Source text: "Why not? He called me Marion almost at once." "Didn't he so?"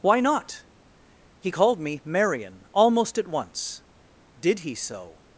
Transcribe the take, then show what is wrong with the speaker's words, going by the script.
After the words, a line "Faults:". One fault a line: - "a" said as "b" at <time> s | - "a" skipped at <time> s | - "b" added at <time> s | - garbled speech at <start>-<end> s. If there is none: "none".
"Why not? He called me Marion almost at once." "Did he so?"
Faults:
- "Didn't" said as "Did" at 4.4 s